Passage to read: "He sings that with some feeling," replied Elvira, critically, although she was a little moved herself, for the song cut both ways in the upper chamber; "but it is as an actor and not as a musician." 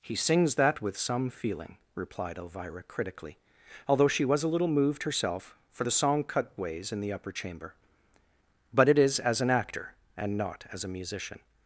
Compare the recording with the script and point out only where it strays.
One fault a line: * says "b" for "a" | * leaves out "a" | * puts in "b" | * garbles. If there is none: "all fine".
* leaves out "both"